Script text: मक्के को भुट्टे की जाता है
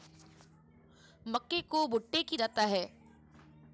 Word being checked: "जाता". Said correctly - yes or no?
yes